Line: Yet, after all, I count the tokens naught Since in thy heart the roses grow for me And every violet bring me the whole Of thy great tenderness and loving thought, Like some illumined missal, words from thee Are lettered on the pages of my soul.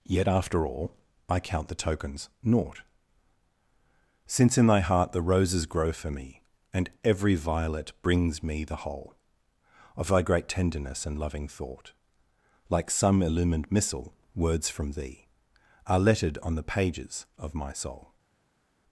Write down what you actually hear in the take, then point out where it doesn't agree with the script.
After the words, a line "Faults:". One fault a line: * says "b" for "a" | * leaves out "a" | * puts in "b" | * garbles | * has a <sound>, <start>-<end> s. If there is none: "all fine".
Yet, after all, I count the tokens naught Since in thy heart the roses grow for me And every violet brings me the whole Of thy great tenderness and loving thought, Like some illumined missal, words from thee Are lettered on the pages of my soul.
Faults:
* says "brings" for "bring"